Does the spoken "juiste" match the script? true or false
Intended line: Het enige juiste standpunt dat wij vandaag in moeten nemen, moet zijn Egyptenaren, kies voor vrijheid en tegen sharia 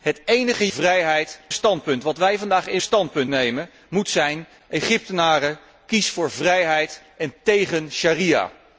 false